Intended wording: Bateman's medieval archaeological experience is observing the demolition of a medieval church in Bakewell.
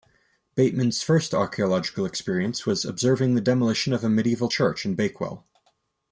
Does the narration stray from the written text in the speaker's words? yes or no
yes